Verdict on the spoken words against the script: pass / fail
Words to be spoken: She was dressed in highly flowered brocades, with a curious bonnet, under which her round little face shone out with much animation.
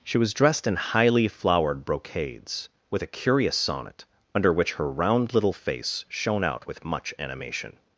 fail